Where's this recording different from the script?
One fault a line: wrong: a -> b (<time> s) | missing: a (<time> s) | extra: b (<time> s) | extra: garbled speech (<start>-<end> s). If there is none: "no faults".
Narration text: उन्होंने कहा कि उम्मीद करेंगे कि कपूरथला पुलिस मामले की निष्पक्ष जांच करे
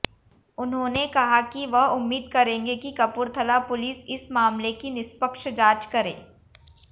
extra: वह (1.6 s)
extra: इस (4.1 s)